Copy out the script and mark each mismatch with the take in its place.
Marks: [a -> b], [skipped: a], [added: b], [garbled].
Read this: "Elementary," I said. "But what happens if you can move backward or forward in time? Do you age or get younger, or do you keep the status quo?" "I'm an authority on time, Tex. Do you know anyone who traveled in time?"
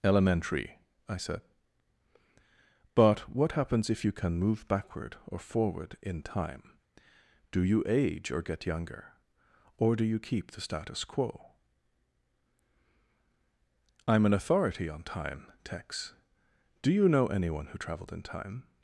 "Elementary," I said. "But what happens if you can move backward or forward in time? Do you age or get younger, or do you keep the status quo?" "I'm an authority on time, Tex. Do you know anyone who traveled in time?"